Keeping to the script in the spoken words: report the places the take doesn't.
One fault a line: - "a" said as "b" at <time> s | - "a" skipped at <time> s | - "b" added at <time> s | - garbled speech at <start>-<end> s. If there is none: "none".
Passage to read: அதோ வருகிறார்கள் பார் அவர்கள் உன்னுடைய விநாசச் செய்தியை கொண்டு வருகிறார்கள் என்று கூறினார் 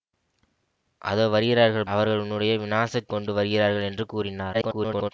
- "பார்" skipped at 1.9 s
- "செய்தியை" skipped at 3.1 s
- garbled speech at 4.5-5.1 s